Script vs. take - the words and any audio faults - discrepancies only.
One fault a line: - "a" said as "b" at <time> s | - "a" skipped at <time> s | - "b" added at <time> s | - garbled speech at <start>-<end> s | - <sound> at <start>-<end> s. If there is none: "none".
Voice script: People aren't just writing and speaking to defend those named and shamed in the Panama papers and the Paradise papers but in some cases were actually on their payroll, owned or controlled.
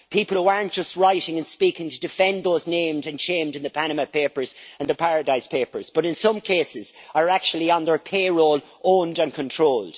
- "who" added at 0.4 s
- "were" said as "are" at 7.1 s
- "or" said as "and" at 9.2 s